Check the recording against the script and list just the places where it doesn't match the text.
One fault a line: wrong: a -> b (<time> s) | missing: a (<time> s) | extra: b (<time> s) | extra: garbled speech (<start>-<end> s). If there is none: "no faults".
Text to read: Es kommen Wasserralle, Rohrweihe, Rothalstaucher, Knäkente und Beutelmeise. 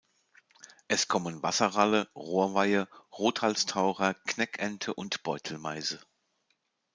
no faults